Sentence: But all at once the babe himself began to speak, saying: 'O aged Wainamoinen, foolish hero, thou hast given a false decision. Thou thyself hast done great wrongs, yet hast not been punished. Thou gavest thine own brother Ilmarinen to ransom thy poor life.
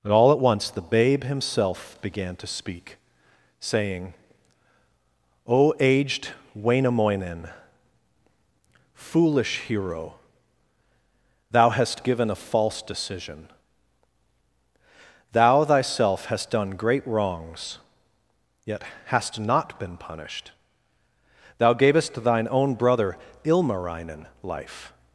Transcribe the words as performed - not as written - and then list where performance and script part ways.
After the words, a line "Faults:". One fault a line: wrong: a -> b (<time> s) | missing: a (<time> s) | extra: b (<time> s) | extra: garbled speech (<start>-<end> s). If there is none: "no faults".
But all at once the babe himself began to speak, saying: 'O aged Wainamoinen, foolish hero, thou hast given a false decision. Thou thyself hast done great wrongs, yet hast not been punished. Thou gavest thine own brother Ilmarinen life.
Faults:
missing: to ransom thy poor (24.3 s)